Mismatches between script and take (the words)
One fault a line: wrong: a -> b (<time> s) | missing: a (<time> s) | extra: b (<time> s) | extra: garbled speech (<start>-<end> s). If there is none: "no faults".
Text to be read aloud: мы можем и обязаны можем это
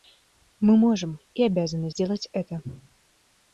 wrong: можем -> сделать (1.9 s)